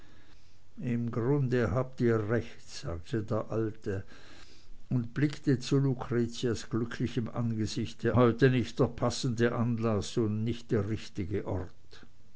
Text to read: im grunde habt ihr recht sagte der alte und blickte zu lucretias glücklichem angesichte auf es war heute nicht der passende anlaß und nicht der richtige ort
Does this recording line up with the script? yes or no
no